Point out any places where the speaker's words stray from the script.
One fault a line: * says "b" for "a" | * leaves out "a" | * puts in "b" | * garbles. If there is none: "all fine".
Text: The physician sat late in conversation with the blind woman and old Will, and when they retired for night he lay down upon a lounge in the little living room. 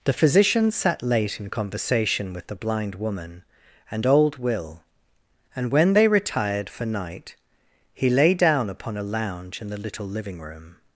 all fine